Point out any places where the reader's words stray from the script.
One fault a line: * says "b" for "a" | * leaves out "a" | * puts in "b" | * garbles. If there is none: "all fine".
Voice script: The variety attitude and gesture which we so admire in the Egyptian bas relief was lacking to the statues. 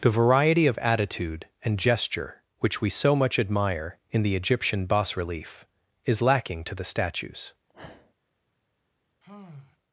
* puts in "of"
* puts in "much"
* says "is" for "was"